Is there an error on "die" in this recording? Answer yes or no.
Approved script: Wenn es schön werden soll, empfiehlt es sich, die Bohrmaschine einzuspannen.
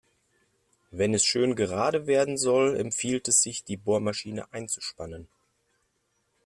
no